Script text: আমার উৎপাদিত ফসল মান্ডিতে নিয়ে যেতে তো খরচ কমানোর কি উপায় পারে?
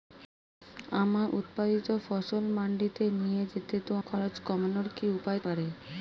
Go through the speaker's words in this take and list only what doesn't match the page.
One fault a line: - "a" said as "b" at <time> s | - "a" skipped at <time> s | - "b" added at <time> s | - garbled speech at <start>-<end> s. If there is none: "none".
none